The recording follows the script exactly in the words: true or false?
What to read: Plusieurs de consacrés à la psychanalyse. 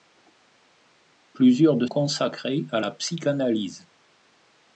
true